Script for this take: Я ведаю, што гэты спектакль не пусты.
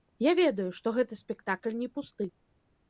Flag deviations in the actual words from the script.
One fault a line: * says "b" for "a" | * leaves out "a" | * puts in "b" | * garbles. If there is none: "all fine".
all fine